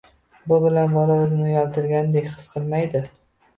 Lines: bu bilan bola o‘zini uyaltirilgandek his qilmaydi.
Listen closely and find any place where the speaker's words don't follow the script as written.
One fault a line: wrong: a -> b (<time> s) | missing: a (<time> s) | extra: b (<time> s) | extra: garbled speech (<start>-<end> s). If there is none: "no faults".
no faults